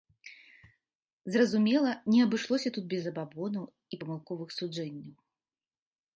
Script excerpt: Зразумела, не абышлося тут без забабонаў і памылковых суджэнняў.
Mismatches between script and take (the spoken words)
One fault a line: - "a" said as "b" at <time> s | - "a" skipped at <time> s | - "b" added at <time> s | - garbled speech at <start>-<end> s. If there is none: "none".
none